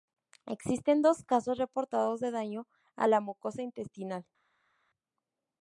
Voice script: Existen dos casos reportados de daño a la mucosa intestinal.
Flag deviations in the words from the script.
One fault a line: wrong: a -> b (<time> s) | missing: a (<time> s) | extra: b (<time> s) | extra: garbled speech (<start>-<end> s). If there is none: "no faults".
no faults